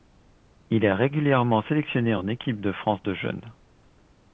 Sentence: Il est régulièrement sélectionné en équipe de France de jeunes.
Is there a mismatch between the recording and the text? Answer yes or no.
no